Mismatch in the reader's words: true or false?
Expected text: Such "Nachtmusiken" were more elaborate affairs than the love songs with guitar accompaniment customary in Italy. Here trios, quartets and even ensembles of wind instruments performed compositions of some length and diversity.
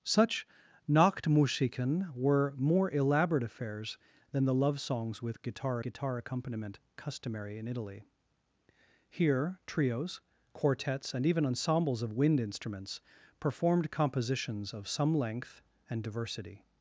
true